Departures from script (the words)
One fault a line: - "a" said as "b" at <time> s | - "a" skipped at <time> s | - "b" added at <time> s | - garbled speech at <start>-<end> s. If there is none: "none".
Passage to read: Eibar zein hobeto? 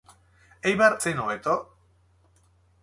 none